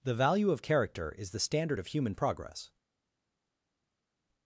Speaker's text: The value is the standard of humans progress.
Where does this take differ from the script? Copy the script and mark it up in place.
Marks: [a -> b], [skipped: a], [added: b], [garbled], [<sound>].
The value [added: of character] is the standard of [humans -> human] progress.